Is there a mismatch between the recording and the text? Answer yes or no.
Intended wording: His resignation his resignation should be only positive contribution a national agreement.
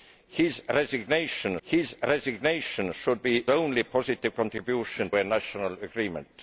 no